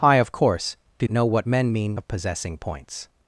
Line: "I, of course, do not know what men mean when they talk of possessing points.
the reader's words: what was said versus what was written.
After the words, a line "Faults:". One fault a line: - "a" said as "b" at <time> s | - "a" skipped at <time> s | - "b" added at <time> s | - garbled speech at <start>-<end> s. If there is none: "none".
"I, of course, do know what men mean of possessing points.
Faults:
- "not" skipped at 1.1 s
- "when they talk" skipped at 2.0 s